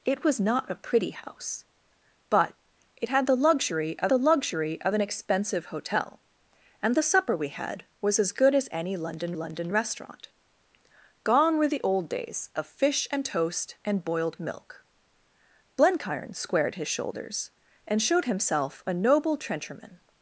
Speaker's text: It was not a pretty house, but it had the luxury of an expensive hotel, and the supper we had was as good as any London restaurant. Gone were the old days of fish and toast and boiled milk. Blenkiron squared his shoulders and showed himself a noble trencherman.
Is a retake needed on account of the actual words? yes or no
yes